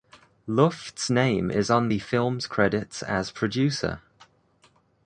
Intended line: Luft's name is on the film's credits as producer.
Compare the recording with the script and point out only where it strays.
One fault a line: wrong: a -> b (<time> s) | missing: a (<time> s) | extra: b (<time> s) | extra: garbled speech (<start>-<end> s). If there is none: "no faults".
no faults